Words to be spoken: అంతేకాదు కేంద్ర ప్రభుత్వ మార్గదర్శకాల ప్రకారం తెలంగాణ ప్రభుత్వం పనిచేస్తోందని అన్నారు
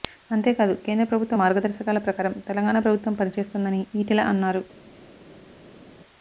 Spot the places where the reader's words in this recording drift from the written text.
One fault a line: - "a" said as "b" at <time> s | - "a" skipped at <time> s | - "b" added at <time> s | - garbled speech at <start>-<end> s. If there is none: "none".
- "ఈటెల" added at 4.0 s